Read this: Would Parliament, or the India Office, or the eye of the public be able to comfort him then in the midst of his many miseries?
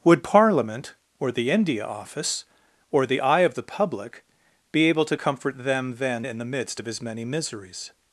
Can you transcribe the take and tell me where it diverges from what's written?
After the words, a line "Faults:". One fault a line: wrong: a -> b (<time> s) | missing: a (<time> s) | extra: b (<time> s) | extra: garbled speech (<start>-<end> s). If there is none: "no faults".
Would Parliament, or the India Office, or the eye of the public be able to comfort them then in the midst of his many miseries?
Faults:
wrong: him -> them (5.6 s)